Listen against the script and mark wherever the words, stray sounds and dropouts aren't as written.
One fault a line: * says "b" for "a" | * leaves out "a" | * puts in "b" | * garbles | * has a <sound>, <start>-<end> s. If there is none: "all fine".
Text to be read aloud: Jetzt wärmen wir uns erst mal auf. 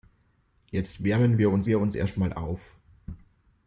* puts in "wir uns"